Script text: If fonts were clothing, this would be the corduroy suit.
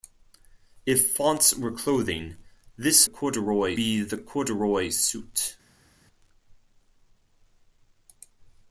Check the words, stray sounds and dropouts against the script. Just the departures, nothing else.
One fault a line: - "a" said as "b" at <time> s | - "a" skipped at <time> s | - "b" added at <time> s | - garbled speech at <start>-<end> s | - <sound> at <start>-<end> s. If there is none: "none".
- "would" said as "corduroy" at 3.0 s